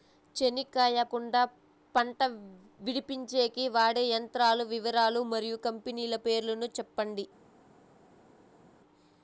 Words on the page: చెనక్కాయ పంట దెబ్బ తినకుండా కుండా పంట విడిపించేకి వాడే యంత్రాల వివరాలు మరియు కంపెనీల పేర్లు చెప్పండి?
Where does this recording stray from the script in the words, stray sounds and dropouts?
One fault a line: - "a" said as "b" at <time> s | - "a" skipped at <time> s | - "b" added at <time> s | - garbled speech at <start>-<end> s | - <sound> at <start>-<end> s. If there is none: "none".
- "పంట దెబ్బ తినకుండా" skipped at 1.0 s